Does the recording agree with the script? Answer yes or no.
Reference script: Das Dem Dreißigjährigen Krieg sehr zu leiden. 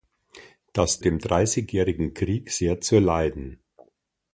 yes